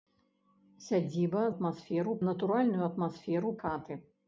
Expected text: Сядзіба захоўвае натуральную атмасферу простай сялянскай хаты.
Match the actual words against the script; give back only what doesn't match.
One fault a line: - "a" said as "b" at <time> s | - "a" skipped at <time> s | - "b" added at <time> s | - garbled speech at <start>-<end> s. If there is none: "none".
- "захоўвае" said as "атмасферу" at 1.5 s
- "простай сялянскай" skipped at 3.5 s